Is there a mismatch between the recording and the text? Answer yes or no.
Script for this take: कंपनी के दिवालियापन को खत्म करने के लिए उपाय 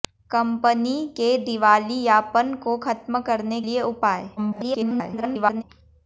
yes